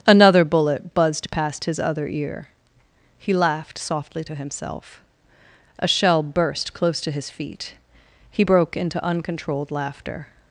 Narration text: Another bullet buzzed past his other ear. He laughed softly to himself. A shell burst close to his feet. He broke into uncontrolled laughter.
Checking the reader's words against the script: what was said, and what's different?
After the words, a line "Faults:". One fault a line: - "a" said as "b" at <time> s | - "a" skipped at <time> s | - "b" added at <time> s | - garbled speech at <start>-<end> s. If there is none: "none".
Another bullet buzzed past his other ear. He laughed softly to himself. A shell burst close to his feet. He broke into uncontrolled laughter.
Faults:
none